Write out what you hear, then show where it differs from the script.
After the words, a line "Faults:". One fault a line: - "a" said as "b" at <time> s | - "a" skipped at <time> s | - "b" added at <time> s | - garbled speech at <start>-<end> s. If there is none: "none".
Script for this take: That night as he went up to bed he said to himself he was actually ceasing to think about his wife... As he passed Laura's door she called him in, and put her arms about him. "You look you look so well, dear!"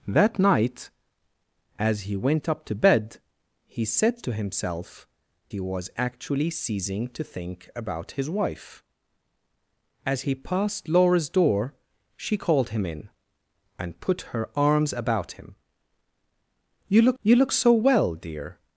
That night as he went up to bed he said to himself he was actually ceasing to think about his wife... As he passed Laura's door she called him in, and put her arms about him. "You look you look so well, dear!"
Faults:
none